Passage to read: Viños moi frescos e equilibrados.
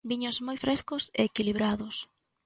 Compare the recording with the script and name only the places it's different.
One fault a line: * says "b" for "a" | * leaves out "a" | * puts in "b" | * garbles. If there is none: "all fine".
all fine